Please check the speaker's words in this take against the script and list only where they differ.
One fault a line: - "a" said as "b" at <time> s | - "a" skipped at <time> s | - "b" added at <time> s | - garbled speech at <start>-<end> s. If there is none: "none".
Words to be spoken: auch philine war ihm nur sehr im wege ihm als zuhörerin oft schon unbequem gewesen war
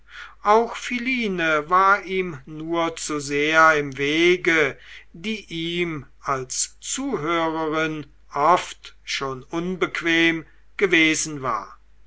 - "zu" added at 3.0 s
- "die" added at 5.1 s